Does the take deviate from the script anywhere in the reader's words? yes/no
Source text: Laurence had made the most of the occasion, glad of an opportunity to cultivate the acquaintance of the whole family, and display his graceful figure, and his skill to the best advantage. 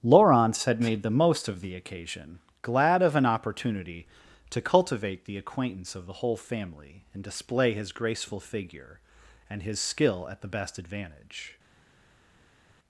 yes